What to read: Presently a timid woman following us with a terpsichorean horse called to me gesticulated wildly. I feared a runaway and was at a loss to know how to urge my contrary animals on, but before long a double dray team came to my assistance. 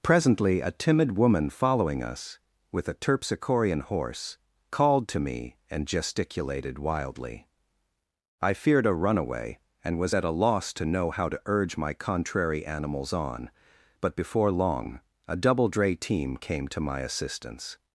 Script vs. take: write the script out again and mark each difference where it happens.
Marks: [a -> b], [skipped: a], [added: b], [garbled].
Presently a timid woman following us with a terpsichorean horse called to me [added: and] gesticulated wildly. I feared a runaway and was at a loss to know how to urge my contrary animals on, but before long a double dray team came to my assistance.